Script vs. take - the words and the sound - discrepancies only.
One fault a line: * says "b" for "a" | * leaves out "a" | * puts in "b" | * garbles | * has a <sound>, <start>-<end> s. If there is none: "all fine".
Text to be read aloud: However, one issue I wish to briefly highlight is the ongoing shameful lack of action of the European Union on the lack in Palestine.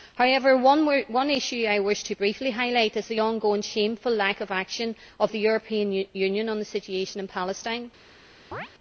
* says "situation" for "lack"
* has a chirp, 8.5-8.7 s